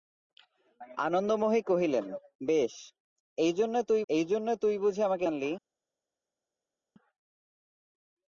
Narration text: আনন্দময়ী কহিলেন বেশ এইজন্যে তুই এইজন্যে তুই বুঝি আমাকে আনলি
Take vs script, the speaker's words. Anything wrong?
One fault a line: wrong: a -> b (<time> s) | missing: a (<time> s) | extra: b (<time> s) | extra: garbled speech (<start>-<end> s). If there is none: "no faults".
no faults